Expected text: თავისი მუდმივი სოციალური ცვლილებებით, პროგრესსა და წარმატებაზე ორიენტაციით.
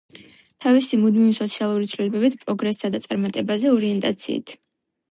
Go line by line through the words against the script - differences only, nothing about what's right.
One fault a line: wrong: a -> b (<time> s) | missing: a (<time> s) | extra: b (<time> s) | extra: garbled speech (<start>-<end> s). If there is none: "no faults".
no faults